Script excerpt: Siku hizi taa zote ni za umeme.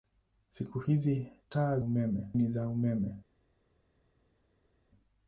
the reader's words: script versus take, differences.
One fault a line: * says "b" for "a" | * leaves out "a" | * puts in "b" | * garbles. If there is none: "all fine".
* says "umeme" for "zote"